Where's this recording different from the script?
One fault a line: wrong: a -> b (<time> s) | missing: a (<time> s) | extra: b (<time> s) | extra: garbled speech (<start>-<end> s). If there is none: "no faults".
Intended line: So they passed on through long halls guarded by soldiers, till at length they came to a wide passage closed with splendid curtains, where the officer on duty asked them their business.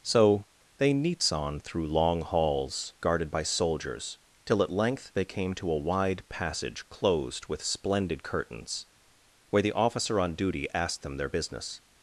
wrong: passed -> neats (0.9 s)